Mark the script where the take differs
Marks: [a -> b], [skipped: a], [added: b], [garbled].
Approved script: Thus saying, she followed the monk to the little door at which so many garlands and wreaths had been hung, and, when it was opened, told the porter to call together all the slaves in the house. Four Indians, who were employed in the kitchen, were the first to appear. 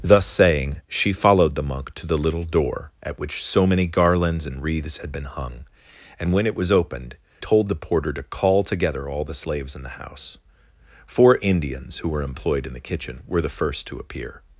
Thus saying, she followed the monk to the little door at which so many garlands and wreaths had been hung, and, when it was opened, told the porter to call together all the slaves in the house. Four Indians, who were employed in the kitchen, were the first to appear.